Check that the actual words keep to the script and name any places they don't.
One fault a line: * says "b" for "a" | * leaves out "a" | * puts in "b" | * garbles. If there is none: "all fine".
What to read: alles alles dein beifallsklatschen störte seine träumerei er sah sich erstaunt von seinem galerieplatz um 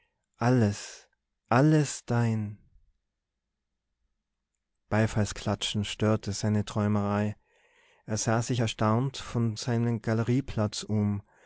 all fine